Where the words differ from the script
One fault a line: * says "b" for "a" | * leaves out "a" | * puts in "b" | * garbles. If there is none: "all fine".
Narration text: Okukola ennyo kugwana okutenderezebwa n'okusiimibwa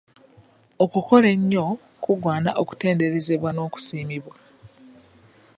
all fine